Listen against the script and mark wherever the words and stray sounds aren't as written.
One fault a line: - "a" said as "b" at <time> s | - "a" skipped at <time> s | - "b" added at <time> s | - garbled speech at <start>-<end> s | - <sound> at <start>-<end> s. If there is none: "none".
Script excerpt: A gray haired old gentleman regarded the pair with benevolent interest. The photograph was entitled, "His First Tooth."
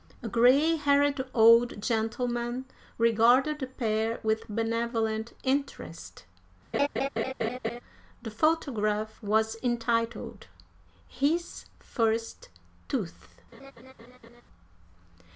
- laugh at 6.7-7.8 s
- laugh at 13.5-14.4 s